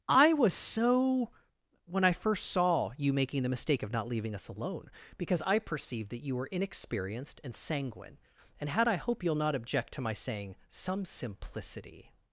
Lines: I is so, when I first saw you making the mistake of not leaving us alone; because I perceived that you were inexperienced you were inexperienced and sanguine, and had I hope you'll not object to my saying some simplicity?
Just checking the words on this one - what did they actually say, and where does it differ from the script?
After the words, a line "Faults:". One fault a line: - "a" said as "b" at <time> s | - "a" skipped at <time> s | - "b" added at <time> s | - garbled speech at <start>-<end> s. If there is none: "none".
I was so, when I first saw you making the mistake of not leaving us alone; because I perceived that you were inexperienced and sanguine, and had I hope you'll not object to my saying some simplicity?
Faults:
- "is" said as "was" at 0.3 s
- "you were inexperienced" skipped at 7.4 s